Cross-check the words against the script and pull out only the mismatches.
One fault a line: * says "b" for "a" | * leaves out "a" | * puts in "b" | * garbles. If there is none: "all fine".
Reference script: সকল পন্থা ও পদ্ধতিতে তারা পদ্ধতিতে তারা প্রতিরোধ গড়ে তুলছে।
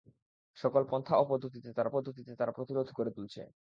all fine